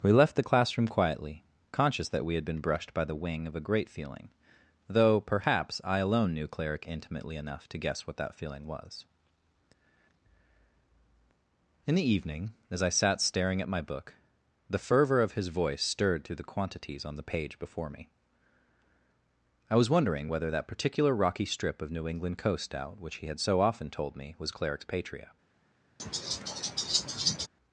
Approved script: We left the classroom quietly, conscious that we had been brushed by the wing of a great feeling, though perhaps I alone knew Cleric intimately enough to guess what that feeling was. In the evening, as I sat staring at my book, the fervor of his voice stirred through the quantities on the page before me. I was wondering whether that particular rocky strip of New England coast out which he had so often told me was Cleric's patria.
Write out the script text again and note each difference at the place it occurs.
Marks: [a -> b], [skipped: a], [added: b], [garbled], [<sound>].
We left the classroom quietly, conscious that we had been brushed by the wing of a great feeling, though perhaps I alone knew Cleric intimately enough to guess what that feeling was. In the evening, as I sat staring at my book, the fervor of his voice stirred through the quantities on the page before me. I was wondering whether that particular rocky strip of New England coast out which he had so often told me was Cleric's patria. [laugh]